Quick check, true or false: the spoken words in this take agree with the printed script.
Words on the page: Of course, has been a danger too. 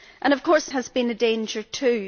true